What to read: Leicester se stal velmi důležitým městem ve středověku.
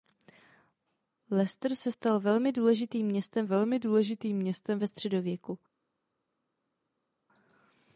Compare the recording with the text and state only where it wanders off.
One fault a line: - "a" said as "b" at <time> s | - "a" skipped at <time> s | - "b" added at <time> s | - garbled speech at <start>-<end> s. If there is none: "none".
- "velmi důležitým městem" added at 3.5 s